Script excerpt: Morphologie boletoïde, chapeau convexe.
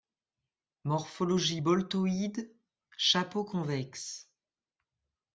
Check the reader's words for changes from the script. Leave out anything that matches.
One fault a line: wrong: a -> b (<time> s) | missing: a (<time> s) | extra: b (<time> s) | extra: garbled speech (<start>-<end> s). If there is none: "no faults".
no faults